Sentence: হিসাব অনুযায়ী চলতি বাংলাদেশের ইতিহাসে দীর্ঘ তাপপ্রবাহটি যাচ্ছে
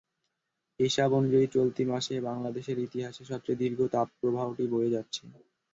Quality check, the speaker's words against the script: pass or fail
fail